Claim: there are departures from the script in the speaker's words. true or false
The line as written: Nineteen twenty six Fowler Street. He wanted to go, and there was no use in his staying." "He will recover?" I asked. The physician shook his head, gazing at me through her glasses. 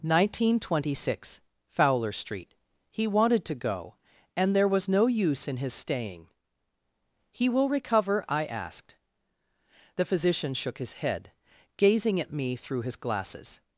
true